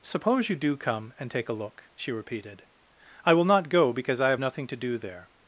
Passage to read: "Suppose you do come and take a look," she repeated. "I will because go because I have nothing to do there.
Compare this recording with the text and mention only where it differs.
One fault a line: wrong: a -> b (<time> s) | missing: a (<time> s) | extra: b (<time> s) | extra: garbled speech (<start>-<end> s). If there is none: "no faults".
wrong: because -> not (3.5 s)